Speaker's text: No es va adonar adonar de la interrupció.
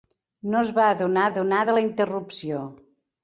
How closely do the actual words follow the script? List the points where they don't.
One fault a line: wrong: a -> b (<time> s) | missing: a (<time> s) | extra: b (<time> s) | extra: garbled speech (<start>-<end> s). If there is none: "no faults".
no faults